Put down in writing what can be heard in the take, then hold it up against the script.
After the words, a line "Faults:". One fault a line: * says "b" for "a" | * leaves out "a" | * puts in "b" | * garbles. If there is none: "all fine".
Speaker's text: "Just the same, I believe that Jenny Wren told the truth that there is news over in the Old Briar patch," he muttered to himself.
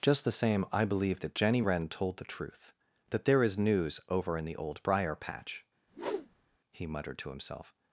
"Just the same, I believe that Jenny Wren told the truth that there is news over in the Old Briar patch," he muttered to himself.
Faults:
all fine